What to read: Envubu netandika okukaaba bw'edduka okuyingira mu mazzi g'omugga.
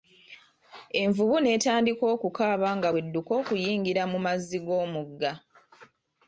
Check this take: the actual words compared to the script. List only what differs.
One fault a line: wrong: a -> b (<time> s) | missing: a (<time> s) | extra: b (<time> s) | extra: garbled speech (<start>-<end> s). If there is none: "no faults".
extra: nga (2.8 s)